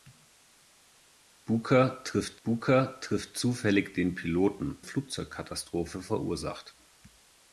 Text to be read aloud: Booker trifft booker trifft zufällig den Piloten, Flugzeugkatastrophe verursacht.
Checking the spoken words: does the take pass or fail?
pass